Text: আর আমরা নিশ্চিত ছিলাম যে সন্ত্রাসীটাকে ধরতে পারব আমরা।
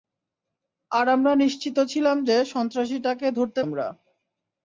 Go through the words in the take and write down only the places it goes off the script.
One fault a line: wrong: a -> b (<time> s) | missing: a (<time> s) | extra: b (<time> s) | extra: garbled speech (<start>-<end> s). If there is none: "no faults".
missing: পারব (3.6 s)